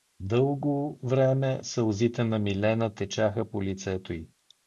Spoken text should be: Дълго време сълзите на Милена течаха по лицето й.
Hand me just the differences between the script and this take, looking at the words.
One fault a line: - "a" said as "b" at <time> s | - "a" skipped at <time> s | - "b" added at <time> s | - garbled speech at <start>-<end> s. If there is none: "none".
none